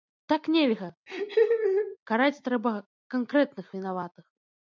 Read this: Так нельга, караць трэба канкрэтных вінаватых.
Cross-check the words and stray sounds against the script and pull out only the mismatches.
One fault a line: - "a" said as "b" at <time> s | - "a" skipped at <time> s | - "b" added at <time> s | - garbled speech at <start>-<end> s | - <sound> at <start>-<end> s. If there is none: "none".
- laugh at 1.1-2.0 s